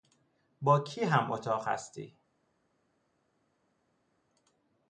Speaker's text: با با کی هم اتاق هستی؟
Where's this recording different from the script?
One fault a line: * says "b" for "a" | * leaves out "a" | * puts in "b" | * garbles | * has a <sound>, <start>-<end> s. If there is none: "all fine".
* leaves out "با"